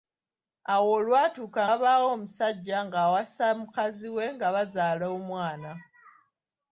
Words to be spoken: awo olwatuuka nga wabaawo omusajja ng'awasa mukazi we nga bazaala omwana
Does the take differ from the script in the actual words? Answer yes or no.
yes